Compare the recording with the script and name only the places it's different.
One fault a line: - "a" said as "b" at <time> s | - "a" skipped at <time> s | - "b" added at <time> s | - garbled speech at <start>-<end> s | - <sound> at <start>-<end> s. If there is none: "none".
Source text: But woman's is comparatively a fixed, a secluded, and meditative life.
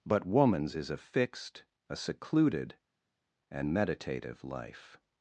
- "comparatively" skipped at 0.9 s